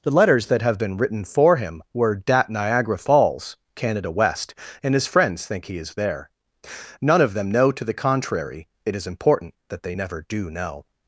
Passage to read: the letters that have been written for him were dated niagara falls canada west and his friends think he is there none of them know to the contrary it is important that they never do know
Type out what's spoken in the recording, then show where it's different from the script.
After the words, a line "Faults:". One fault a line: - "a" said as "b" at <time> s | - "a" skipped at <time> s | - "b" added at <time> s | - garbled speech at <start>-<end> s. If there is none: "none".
the letters that have been written for him were dat niagara falls canada west and his friends think he is there none of them know to the contrary it is important that they never do know
Faults:
- "dated" said as "dat" at 2.1 s